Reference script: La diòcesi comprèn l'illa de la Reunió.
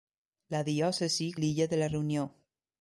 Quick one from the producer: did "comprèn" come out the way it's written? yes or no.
no